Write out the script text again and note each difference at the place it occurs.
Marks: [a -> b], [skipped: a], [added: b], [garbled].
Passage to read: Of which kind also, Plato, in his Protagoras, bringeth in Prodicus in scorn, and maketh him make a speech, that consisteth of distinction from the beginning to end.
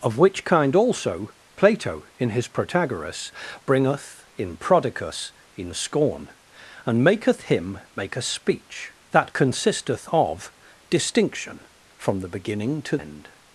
Of which kind also, Plato, in his Protagoras, bringeth in Prodicus in scorn, and maketh him make a speech, that consisteth of distinction from the beginning to end.